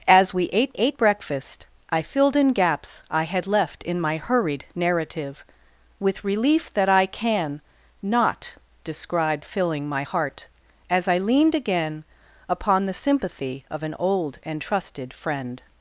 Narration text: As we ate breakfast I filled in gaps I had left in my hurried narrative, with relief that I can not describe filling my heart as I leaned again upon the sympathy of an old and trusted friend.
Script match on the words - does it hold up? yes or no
no